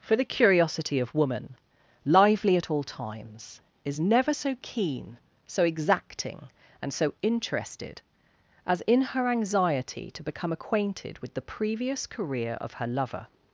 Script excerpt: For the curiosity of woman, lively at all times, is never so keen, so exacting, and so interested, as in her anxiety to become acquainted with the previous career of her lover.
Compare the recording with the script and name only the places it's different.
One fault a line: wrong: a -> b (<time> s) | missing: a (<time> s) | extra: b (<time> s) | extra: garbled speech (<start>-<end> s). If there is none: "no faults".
no faults